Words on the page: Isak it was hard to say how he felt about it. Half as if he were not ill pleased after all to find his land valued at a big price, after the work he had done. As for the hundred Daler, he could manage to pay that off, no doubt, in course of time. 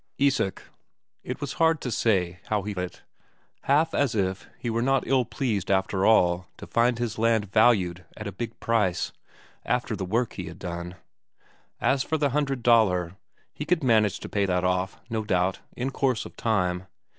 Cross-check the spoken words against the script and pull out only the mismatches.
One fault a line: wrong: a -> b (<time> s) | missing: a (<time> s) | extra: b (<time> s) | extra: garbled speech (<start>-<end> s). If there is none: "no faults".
missing: felt about (2.7 s)